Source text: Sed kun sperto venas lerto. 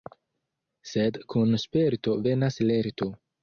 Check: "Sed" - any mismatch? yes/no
no